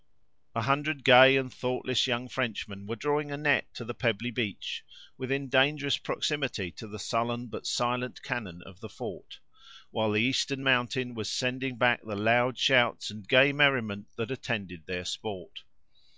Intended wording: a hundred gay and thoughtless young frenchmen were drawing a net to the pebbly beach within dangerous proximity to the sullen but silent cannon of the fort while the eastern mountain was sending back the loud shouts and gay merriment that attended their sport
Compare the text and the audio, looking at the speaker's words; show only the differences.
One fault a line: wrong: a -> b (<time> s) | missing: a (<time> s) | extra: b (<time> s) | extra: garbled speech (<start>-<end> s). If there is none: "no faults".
no faults